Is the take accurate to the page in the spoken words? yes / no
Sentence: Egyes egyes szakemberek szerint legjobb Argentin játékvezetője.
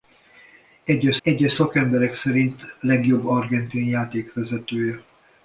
yes